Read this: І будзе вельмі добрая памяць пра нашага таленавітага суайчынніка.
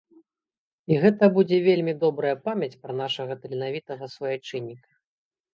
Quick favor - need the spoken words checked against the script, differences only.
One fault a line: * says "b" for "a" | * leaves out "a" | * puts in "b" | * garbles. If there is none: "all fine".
* puts in "гэта"